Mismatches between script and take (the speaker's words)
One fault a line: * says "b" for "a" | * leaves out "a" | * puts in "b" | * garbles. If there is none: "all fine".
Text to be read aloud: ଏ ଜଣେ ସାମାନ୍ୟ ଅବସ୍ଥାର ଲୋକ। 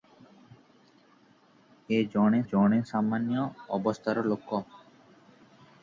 * puts in "ଜଣେ"